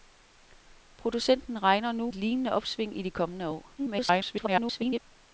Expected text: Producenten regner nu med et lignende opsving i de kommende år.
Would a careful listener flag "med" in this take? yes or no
yes